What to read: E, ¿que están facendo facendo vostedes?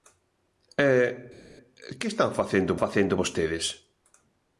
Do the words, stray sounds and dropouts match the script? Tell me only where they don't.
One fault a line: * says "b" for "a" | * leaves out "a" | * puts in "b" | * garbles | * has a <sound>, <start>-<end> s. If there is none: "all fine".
all fine